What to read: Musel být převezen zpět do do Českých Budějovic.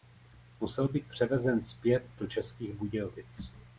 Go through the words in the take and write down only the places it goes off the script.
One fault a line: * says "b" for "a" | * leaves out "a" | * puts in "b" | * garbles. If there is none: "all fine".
* leaves out "do"